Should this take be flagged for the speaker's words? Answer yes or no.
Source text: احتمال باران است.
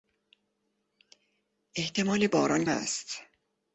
no